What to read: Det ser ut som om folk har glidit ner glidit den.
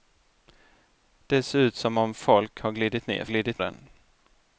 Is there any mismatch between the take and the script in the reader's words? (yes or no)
no